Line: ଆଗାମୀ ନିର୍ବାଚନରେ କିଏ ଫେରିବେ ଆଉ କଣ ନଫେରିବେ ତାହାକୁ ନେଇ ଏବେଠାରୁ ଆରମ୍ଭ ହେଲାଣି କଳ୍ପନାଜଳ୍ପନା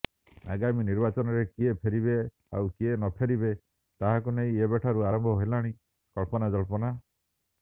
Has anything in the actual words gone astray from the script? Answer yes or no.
yes